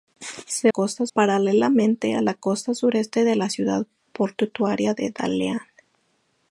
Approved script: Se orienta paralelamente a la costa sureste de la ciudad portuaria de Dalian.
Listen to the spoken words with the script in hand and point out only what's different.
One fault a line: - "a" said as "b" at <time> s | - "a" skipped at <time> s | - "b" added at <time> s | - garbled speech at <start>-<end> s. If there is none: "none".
- "orienta" said as "costa" at 0.7 s